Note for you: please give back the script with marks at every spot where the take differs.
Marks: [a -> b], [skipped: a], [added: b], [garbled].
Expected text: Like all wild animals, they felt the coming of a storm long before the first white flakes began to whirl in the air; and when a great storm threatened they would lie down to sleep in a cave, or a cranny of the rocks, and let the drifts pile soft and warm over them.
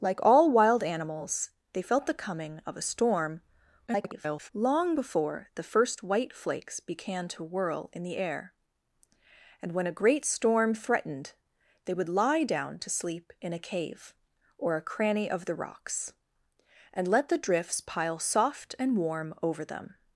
Like all wild animals, they felt the coming of a storm [garbled] long before the first white flakes began to whirl in the air; and when a great storm threatened they would lie down to sleep in a cave, or a cranny of the rocks, and let the drifts pile soft and warm over them.